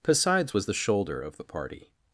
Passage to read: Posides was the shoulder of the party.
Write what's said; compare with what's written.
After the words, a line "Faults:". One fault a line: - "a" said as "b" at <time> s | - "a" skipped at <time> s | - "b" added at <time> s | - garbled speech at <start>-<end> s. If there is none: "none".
Posides was the shoulder of the party.
Faults:
none